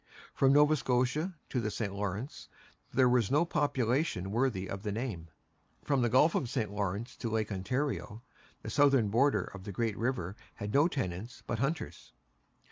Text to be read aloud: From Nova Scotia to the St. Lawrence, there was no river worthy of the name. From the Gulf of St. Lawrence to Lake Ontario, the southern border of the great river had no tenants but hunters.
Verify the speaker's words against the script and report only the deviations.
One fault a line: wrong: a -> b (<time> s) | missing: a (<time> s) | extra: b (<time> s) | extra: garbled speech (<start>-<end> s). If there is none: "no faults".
wrong: river -> population (3.5 s)